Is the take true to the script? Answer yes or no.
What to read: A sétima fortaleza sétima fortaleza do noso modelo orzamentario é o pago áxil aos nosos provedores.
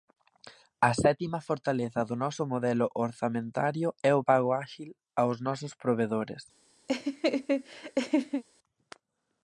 no